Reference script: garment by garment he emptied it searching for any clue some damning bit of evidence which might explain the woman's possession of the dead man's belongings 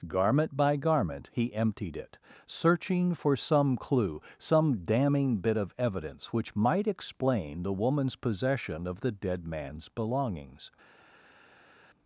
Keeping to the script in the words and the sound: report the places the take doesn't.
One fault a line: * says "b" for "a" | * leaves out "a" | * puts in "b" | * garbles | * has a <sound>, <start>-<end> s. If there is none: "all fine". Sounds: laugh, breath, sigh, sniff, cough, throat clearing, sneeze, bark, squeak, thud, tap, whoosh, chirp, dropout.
* says "some" for "any"